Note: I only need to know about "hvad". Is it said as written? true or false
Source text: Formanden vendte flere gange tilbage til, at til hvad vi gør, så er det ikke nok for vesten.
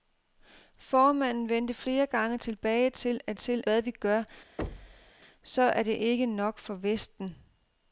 true